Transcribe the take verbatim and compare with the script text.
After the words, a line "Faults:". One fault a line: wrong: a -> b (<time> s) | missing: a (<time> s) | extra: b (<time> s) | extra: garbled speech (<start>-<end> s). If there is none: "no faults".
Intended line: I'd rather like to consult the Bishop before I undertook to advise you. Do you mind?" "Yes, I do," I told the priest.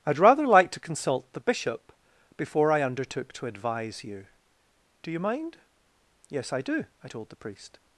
I'd rather like to consult the Bishop before I undertook to advise you. Do you mind?" "Yes, I do," I told the priest.
Faults:
no faults